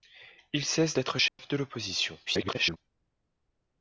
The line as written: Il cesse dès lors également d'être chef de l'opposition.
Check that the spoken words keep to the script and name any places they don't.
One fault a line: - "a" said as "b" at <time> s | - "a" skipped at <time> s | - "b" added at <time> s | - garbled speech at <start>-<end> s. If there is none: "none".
- "dès lors également" skipped at 0.9 s
- garbled speech at 2.3-2.8 s